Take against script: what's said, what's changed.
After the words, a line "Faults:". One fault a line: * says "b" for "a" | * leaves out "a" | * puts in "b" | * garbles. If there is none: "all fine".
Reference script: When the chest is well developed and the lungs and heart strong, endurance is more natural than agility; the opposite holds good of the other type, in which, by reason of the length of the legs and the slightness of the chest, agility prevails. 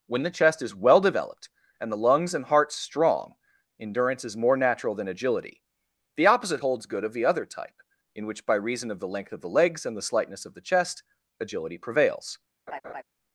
When the chest is well developed and the lungs and heart strong, endurance is more natural than agility; the opposite holds good of the other type, in which, by reason of the length of the legs and the slightness of the chest, agility prevails.
Faults:
all fine